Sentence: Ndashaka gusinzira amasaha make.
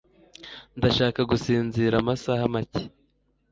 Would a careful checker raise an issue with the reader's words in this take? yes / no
no